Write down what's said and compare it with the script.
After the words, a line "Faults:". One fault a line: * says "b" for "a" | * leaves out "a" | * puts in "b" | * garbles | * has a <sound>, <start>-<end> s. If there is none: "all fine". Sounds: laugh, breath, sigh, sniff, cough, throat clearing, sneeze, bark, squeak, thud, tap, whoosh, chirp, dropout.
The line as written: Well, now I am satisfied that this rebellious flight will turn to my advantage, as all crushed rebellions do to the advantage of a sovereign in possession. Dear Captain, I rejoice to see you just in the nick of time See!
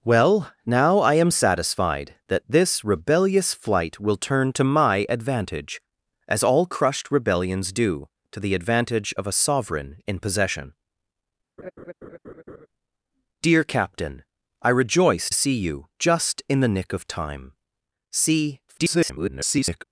Well, now I am satisfied that this rebellious flight will turn to my advantage, as all crushed rebellions do to the advantage of a sovereign in possession. Dear Captain, I rejoice see you just in the nick of time See! [garbled]
Faults:
* has a laugh, 11.6-12.7 s
* leaves out "to"
* garbles